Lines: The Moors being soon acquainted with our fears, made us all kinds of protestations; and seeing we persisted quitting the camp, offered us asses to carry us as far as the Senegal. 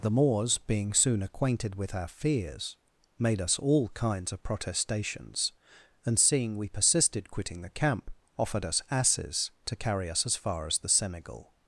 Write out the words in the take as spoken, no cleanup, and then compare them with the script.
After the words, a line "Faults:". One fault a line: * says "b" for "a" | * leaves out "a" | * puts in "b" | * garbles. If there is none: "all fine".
The Moors being soon acquainted with our fears, made us all kinds of protestations; and seeing we persisted quitting the camp, offered us asses to carry us as far as the Senegal.
Faults:
all fine